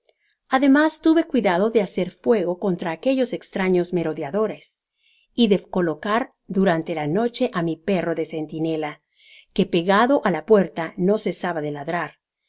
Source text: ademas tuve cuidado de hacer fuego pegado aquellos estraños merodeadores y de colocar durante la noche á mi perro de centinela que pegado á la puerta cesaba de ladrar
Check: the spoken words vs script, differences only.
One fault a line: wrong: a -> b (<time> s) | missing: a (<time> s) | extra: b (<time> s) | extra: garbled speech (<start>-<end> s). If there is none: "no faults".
wrong: pegado -> contra (2.6 s)
extra: no (11.0 s)